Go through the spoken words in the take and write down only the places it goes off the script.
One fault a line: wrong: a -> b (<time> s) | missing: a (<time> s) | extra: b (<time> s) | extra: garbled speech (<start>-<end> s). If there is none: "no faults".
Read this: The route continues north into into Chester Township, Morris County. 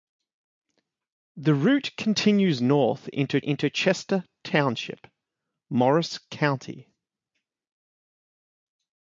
no faults